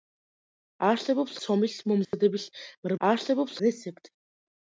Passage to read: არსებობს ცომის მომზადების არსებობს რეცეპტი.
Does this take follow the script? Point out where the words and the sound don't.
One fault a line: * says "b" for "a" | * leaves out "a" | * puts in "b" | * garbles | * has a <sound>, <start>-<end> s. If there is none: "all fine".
* has a dropout, 2.0-2.1 s